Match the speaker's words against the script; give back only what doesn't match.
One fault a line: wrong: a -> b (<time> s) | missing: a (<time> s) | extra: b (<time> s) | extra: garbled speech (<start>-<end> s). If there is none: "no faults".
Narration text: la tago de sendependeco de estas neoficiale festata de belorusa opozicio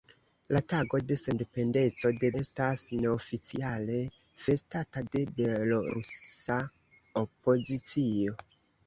no faults